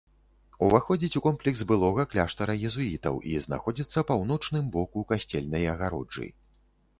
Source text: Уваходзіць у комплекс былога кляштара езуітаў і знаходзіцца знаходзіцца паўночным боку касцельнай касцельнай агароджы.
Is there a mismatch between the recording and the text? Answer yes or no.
yes